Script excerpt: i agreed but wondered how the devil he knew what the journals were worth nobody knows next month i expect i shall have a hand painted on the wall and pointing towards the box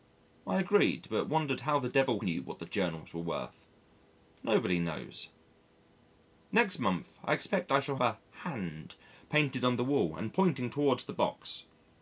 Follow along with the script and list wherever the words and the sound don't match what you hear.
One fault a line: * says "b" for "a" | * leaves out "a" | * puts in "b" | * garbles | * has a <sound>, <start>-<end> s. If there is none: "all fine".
* leaves out "he"
* leaves out "have"